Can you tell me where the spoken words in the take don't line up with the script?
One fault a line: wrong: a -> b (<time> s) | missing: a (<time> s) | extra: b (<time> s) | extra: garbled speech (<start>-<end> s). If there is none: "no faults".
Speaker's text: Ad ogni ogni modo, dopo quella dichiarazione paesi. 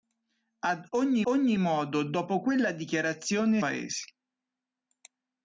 no faults